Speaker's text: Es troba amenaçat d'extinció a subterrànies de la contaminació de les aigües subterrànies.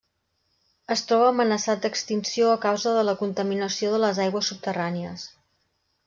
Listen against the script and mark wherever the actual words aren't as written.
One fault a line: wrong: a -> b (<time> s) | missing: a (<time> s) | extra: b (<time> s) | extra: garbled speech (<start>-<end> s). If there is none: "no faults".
wrong: subterrànies -> causa (2.6 s)